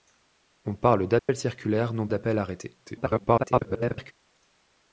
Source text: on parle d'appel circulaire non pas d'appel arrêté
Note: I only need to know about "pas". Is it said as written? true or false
false